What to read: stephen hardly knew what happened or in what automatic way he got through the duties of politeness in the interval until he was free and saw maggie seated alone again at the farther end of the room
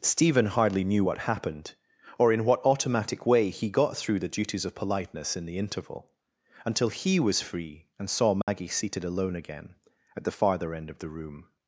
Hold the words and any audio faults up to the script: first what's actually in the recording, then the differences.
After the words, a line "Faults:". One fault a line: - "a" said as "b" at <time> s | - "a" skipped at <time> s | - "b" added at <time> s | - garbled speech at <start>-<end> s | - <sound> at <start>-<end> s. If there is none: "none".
stephen hardly knew what happened or in what automatic way he got through the duties of politeness in the interval until he was free and saw maggie seated alone again at the farther end of the room
Faults:
- dropout at 8.4-8.5 s